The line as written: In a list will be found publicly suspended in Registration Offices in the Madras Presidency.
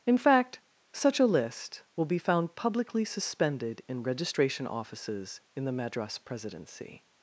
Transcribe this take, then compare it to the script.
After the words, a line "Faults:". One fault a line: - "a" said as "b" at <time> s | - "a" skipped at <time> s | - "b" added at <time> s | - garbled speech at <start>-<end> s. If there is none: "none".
In fact such a list will be found publicly suspended in Registration Offices in the Madras Presidency.
Faults:
- "fact such" added at 0.2 s